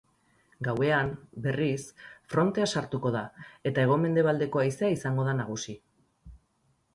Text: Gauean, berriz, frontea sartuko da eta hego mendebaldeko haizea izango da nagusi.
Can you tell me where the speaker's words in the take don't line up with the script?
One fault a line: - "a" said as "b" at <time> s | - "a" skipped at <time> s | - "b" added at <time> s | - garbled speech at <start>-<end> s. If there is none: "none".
none